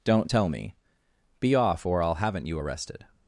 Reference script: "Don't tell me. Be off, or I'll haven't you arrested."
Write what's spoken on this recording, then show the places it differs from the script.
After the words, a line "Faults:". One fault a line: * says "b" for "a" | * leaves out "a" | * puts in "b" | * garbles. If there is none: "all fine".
"Don't tell me. Be off, or I'll haven't you arrested."
Faults:
all fine